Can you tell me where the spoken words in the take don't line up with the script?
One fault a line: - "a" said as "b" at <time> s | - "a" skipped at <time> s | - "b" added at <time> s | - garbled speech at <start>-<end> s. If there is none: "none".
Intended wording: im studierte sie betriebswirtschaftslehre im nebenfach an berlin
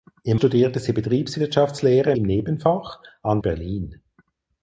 none